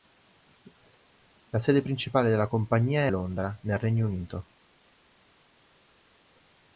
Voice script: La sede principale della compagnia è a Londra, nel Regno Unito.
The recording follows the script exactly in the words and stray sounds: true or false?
false